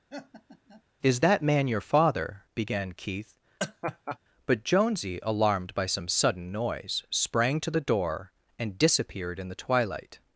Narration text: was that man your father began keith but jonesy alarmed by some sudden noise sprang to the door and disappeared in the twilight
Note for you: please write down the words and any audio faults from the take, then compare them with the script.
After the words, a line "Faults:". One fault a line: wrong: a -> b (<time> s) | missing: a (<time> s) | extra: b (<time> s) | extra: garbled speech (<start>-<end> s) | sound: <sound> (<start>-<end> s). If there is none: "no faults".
is that man your father began keith but jonesy alarmed by some sudden noise sprang to the door and disappeared in the twilight
Faults:
sound: laugh (0.1-0.8 s)
wrong: was -> is (1.0 s)
sound: laugh (3.6-4.2 s)